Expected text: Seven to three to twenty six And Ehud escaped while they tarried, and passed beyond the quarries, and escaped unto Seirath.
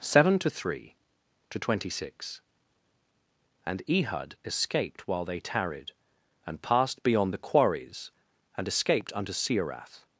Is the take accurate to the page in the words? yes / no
yes